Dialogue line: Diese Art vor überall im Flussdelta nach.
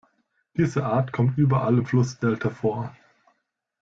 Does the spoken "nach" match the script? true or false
false